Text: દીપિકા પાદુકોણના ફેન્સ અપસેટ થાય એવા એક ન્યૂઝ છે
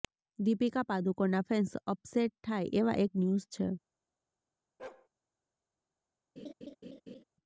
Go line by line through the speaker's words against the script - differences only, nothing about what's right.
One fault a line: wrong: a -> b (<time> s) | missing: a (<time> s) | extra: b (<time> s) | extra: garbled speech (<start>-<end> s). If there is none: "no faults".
no faults